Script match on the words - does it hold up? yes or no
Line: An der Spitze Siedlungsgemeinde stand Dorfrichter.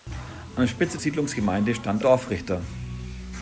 yes